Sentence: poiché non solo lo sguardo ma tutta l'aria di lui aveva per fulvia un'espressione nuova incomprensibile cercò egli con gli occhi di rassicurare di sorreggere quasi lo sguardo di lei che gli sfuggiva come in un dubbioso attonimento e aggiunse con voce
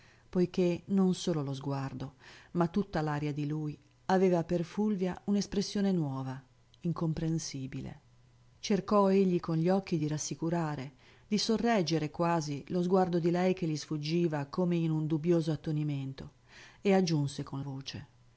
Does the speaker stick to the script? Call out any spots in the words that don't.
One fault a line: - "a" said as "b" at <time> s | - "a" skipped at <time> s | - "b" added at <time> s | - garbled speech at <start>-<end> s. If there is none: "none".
none